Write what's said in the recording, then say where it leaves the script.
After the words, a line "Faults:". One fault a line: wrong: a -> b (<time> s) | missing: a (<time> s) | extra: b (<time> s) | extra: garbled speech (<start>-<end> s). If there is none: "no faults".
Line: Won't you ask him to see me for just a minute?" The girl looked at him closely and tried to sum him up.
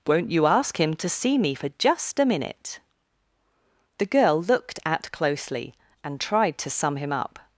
Won't you ask him to see me for just a minute?" The girl looked at closely and tried to sum him up.
Faults:
missing: him (5.1 s)